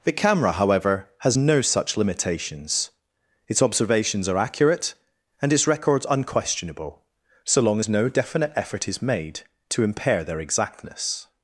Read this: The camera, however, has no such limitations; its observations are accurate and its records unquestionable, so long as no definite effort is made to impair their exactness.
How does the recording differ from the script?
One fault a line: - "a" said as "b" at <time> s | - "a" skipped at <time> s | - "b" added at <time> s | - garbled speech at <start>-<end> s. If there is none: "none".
none